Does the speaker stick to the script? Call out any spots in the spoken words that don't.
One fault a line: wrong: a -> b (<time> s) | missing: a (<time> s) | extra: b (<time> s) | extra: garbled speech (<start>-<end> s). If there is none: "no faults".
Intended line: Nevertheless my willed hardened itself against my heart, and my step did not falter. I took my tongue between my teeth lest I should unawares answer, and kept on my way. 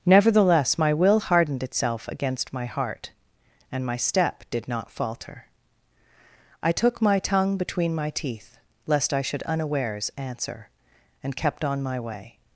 wrong: willed -> will (0.9 s)